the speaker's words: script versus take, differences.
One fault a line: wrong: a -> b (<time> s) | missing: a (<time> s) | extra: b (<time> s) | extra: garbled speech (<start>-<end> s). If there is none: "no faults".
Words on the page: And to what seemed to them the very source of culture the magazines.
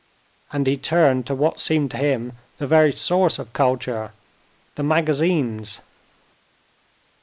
extra: he turned (0.7 s)
wrong: them -> him (2.0 s)